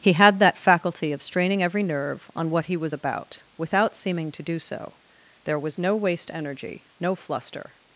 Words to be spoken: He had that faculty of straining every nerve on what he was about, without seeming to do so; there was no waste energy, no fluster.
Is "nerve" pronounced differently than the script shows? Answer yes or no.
no